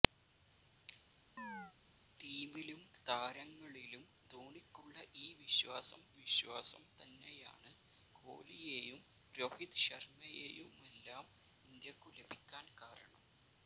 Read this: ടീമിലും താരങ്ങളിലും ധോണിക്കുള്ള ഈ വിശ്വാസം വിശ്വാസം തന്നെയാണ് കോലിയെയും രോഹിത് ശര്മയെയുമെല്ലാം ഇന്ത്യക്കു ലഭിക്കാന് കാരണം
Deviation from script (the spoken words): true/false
false